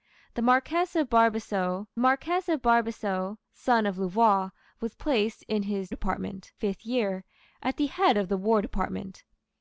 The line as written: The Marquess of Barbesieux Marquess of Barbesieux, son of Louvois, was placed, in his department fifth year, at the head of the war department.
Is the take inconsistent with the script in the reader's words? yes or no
no